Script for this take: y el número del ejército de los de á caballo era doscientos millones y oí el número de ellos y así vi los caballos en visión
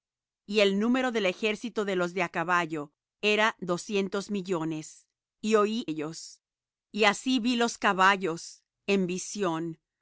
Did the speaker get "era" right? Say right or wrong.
right